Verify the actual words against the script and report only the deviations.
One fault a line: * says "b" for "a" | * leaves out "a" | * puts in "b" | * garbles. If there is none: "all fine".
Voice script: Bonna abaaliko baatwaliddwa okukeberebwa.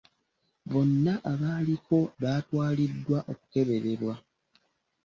all fine